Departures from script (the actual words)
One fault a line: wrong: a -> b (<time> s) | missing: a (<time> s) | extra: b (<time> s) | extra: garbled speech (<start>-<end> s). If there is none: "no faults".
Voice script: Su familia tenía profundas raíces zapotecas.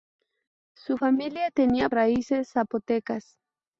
missing: profundas (1.9 s)